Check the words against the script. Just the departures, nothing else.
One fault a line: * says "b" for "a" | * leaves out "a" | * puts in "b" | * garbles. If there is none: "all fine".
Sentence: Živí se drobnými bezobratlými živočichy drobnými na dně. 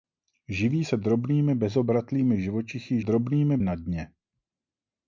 all fine